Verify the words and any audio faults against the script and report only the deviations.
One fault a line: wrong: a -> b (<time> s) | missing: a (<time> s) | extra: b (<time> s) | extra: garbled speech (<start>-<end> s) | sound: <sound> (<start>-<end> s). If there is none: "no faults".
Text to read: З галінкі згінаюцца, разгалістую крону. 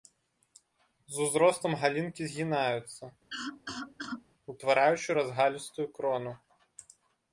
extra: узростам (1.2 s)
sound: cough (3.3-4.2 s)
extra: утвараючы (4.5 s)